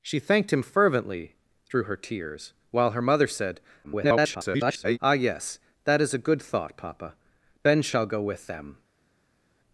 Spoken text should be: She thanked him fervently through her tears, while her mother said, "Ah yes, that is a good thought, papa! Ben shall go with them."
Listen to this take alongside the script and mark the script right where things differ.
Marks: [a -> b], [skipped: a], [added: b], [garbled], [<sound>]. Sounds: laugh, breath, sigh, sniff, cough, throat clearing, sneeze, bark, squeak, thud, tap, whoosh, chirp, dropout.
She thanked him fervently through her tears, while her mother said, [garbled] "Ah yes, that is a good thought, papa! Ben shall go with them."